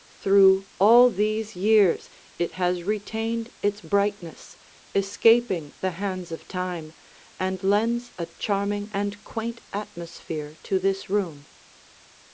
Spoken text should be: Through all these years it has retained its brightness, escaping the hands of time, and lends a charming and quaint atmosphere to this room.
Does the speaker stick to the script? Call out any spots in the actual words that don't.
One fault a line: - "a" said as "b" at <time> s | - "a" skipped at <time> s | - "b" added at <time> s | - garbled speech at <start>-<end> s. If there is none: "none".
none